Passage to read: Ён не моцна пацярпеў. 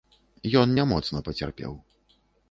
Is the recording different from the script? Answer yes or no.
no